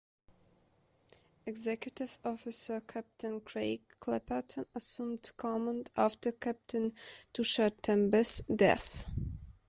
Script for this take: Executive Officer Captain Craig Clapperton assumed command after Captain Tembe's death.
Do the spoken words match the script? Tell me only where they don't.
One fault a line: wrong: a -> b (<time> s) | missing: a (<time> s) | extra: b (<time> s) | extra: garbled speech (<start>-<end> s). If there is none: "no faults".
extra: Tushar (7.3 s)